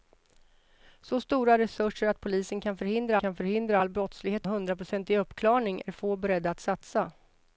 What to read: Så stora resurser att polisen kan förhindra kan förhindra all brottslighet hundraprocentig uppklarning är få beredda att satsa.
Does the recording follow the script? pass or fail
pass